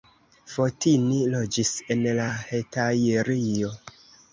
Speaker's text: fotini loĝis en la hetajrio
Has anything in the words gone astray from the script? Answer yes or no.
no